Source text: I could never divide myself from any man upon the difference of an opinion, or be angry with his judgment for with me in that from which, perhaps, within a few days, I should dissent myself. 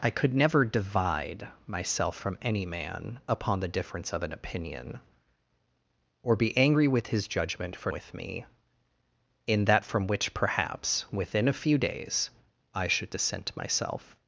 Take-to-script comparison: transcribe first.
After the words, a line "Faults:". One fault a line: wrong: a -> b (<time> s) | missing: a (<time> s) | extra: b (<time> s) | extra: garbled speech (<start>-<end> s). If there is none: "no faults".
I could never divide myself from any man upon the difference of an opinion, or be angry with his judgment for with me in that from which, perhaps, within a few days, I should dissent myself.
Faults:
no faults